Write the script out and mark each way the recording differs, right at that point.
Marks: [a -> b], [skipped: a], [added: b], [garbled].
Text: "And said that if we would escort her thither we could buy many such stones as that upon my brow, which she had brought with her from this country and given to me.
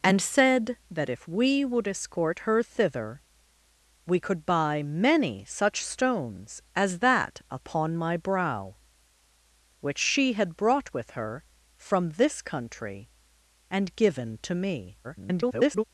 "And said that if we would escort her thither we could buy many such stones as that upon my brow, which she had brought with her from this country and given to me. [garbled]